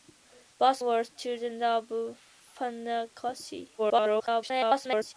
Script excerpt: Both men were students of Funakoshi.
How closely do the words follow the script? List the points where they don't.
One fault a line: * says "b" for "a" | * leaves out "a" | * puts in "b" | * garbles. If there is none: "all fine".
* leaves out "men"
* garbles